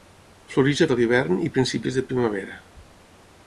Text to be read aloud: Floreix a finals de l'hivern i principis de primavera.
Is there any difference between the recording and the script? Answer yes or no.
yes